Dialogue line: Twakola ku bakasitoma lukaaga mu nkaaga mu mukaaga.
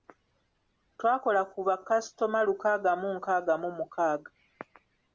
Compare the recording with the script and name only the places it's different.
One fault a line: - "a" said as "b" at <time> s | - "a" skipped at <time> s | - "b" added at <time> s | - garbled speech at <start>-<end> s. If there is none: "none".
none